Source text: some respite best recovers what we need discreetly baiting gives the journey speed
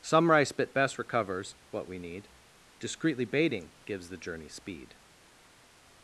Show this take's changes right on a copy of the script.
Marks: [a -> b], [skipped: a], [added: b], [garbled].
some [respite -> rice bit] best recovers what we need discreetly baiting gives the journey speed